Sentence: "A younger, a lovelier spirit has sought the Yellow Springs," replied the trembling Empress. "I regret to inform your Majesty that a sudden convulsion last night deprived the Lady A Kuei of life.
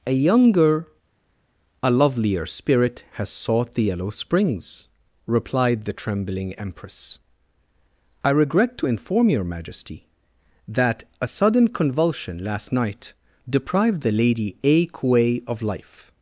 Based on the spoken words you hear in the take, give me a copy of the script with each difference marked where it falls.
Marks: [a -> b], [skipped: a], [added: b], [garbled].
"A younger, a lovelier spirit has sought the Yellow Springs," replied the trembling Empress. "I regret to inform your Majesty that a sudden convulsion last night deprived the Lady A Kuei of life.